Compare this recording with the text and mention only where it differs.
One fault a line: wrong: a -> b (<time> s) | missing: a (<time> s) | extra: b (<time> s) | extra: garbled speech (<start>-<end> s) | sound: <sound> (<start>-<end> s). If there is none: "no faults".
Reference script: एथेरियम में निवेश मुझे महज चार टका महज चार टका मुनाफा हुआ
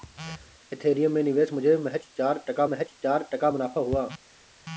no faults